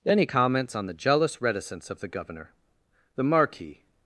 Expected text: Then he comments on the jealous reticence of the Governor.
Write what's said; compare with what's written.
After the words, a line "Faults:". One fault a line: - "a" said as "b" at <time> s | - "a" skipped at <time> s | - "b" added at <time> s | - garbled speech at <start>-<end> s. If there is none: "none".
Then he comments on the jealous reticence of the Governor. "The Marquis
Faults:
- "The Marquis" added at 3.1 s